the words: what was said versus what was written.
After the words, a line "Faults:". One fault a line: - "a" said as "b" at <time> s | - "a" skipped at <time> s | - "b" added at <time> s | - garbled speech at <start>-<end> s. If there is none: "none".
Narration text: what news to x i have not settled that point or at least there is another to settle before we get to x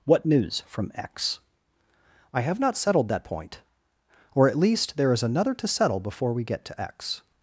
what news from x i have not settled that point or at least there is another to settle before we get to x
Faults:
- "to" said as "from" at 0.7 s